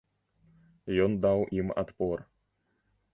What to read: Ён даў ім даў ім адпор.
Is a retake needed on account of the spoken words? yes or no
yes